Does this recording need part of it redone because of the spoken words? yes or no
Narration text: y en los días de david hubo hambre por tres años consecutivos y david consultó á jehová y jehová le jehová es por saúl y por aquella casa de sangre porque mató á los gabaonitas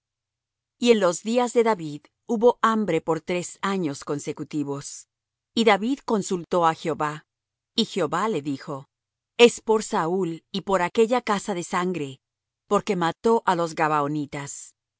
yes